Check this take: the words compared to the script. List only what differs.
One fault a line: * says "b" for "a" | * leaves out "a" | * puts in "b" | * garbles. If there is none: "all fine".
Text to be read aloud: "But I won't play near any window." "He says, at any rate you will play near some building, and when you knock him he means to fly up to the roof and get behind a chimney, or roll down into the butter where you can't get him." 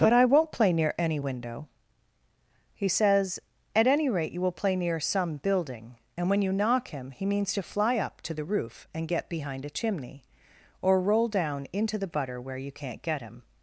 all fine